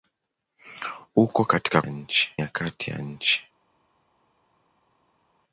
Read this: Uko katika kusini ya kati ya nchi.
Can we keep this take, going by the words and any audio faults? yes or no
no